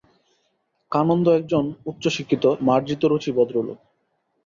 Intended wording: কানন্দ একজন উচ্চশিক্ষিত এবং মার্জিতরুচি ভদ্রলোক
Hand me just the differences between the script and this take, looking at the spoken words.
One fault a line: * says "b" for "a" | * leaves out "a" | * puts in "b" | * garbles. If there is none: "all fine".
* leaves out "এবং"